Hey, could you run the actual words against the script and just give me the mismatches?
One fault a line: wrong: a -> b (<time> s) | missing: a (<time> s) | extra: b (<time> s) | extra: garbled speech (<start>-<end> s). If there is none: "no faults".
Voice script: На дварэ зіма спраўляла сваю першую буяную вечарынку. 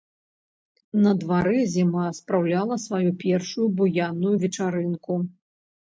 no faults